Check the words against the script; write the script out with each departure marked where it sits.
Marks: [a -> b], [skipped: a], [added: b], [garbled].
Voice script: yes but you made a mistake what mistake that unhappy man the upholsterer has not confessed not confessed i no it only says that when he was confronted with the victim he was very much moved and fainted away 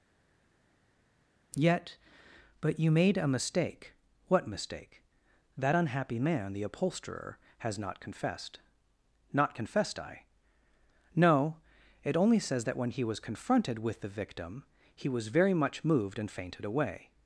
[yes -> yet] but you made a mistake what mistake that unhappy man the upholsterer has not confessed not confessed i no it only says that when he was confronted with the victim he was very much moved and fainted away